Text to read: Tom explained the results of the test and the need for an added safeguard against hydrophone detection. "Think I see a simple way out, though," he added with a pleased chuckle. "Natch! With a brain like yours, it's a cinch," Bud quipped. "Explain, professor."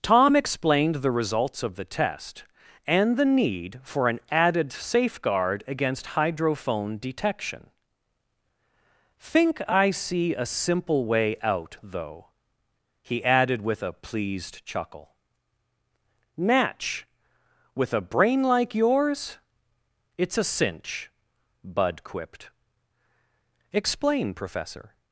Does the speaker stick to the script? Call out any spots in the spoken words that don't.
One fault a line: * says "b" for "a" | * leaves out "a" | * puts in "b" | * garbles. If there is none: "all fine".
all fine